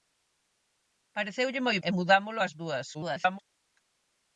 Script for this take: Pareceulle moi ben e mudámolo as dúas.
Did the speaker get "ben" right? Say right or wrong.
wrong